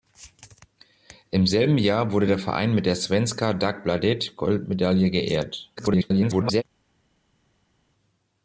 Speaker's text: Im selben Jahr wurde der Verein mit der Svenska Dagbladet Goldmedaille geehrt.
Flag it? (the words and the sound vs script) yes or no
yes